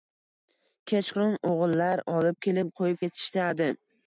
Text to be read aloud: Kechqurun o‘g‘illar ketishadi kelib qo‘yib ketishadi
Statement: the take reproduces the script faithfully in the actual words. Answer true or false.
false